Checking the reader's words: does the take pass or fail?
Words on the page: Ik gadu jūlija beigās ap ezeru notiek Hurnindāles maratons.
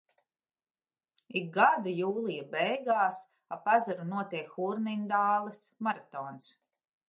pass